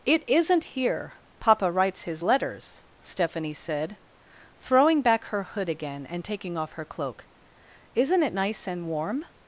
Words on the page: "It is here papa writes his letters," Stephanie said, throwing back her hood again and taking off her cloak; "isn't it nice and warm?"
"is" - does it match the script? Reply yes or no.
no